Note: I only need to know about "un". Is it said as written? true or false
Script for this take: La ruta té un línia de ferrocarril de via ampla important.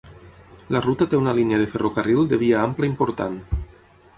false